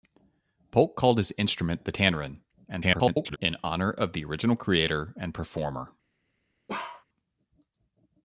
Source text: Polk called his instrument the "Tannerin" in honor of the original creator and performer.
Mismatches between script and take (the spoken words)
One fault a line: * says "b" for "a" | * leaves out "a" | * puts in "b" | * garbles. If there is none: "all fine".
* garbles